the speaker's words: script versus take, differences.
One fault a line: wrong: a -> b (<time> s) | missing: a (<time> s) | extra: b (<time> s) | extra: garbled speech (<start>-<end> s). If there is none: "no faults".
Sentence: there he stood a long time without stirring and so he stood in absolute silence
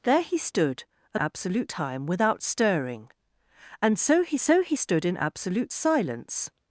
wrong: long -> absolute (1.2 s)
extra: so he (4.4 s)